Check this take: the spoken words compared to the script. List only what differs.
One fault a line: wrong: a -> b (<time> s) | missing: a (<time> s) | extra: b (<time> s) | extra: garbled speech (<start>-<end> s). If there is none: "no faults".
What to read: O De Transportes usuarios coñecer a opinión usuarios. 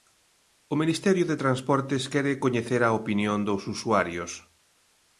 extra: Ministerio (0.8 s)
wrong: usuarios -> quere (2.1 s)
extra: dos (3.5 s)